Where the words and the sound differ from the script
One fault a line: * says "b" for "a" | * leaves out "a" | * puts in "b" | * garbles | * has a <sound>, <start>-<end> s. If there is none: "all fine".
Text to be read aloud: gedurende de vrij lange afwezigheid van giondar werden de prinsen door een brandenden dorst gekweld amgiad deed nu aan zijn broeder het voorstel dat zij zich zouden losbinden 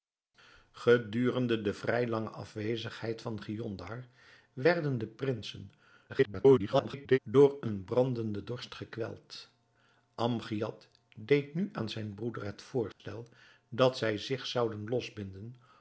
* garbles
* has a dropout, 12.9-13.0 s